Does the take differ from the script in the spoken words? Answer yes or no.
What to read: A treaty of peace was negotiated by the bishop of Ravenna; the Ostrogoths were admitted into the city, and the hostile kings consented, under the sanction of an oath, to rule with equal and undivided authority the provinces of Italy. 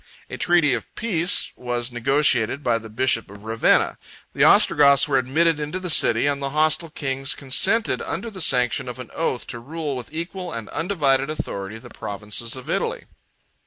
no